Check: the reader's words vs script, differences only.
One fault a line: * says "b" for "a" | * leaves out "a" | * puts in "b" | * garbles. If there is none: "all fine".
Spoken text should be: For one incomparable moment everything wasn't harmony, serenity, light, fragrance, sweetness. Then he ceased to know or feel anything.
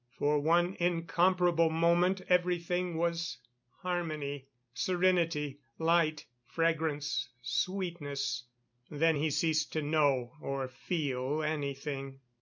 * says "was" for "wasn't"